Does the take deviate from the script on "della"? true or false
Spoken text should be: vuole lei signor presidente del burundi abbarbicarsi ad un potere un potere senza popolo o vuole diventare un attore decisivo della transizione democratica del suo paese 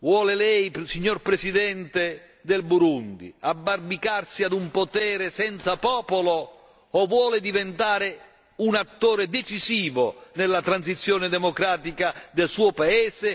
true